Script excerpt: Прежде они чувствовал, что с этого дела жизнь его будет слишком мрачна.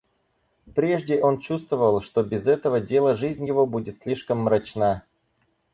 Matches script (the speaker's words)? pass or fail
fail